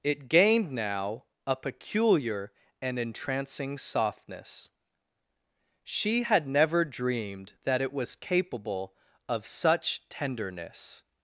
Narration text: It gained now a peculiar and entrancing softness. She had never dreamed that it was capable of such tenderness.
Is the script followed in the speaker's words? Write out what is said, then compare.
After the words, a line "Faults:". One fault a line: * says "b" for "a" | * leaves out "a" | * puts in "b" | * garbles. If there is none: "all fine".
It gained now a peculiar and entrancing softness. She had never dreamed that it was capable of such tenderness.
Faults:
all fine